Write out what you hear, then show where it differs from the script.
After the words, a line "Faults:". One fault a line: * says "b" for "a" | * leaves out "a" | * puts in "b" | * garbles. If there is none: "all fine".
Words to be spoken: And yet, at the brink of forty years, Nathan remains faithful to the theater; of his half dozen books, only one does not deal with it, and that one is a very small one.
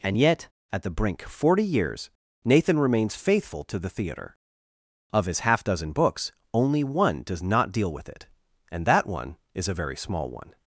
And yet, at the brink forty years, Nathan remains faithful to the theater; of his half dozen books, only one does not deal with it, and that one is a very small one.
Faults:
* leaves out "of"